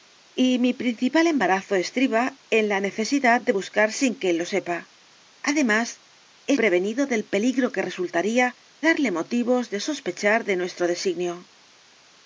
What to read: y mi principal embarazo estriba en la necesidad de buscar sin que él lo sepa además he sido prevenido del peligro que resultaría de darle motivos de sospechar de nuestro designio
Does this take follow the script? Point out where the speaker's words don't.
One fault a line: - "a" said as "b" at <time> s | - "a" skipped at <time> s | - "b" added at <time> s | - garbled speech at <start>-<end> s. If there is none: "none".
- "sido" skipped at 6.6 s
- "de" skipped at 8.6 s